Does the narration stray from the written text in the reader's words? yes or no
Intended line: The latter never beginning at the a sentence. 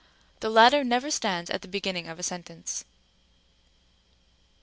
yes